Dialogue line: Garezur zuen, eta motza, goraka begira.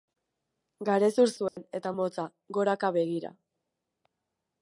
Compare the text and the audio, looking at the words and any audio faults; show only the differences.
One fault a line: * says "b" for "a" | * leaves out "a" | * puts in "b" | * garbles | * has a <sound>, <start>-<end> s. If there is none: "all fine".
* has a dropout, 1.5-1.6 s